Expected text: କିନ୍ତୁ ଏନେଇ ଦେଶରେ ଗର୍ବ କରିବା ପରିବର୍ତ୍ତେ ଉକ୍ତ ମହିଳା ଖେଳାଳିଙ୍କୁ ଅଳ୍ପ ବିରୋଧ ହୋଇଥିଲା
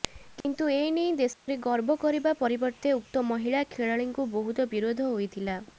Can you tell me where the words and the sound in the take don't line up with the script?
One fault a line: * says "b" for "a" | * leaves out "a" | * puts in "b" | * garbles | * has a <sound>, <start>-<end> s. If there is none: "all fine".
* has a dropout, 0.4-0.4 s
* has a dropout, 1.3-1.5 s
* says "ବହୁତ" for "ଅଳ୍ପ"